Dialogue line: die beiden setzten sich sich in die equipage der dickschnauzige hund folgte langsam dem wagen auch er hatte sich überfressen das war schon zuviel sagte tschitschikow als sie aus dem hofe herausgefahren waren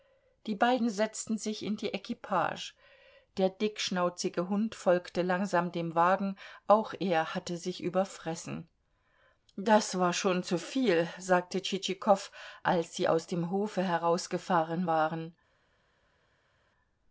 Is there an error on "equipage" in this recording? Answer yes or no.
no